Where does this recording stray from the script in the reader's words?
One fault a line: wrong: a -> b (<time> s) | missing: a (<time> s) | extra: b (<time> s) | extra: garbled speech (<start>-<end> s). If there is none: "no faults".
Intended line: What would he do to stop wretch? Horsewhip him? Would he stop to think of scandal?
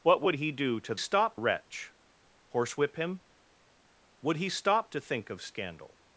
no faults